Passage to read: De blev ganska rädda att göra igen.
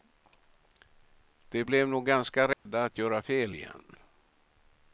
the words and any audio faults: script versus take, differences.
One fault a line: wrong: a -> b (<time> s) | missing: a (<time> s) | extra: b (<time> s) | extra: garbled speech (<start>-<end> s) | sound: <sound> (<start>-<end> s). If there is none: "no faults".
extra: nog (1.9 s)
sound: dropout (2.5-2.7 s)
extra: fel (3.2 s)